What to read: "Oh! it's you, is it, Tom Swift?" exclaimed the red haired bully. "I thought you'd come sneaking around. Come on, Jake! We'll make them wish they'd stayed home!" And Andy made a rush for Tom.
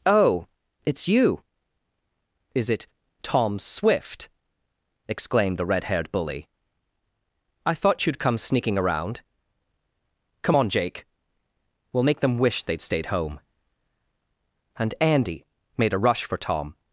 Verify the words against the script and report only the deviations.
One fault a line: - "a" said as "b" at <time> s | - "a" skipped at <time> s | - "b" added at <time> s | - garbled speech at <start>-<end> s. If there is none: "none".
none